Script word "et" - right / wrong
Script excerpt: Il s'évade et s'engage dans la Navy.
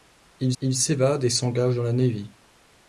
right